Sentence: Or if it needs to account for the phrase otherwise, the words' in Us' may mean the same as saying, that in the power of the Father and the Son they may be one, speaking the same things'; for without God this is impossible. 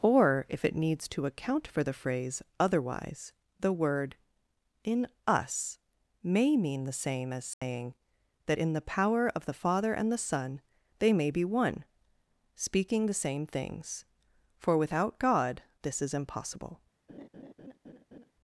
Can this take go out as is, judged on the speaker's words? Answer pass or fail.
fail